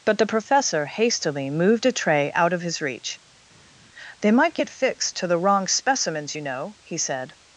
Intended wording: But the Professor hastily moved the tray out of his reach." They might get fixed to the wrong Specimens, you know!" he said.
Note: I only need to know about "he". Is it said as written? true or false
true